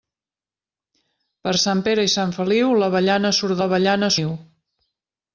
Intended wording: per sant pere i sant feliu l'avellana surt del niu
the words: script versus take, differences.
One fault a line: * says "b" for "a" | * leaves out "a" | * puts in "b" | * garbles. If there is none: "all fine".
* says "l'avellana" for "del"